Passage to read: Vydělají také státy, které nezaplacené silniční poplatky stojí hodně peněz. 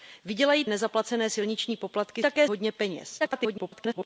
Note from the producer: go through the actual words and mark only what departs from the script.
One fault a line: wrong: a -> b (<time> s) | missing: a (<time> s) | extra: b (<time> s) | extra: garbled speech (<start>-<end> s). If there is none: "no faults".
missing: také státy které (0.7 s)
wrong: stojí -> také (2.2 s)
extra: garbled speech (3.2-4.1 s)